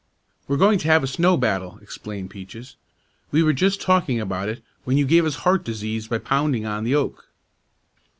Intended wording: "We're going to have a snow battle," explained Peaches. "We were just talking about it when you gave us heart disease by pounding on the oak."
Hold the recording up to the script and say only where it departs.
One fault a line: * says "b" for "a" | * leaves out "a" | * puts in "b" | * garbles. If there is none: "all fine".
all fine